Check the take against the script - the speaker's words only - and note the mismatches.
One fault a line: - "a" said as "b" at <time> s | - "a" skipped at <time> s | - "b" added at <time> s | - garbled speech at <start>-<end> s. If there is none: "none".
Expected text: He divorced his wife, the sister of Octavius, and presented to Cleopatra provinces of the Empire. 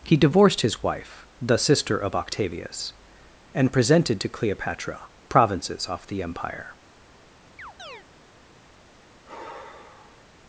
- "of" said as "off" at 5.9 s